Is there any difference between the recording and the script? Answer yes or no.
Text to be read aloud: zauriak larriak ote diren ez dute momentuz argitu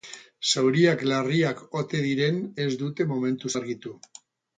no